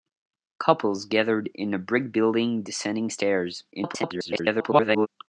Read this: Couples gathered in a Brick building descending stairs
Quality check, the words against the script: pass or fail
fail